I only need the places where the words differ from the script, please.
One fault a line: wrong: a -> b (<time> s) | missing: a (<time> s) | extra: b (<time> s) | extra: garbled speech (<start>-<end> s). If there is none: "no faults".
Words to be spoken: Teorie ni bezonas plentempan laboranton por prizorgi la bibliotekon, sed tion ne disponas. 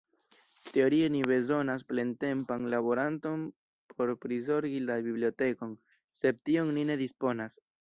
extra: ni (6.8 s)